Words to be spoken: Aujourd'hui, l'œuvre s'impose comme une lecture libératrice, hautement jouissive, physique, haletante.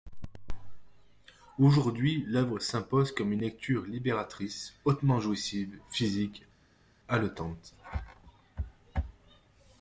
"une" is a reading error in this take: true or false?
false